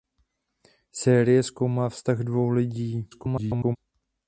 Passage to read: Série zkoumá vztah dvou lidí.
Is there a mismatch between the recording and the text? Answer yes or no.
yes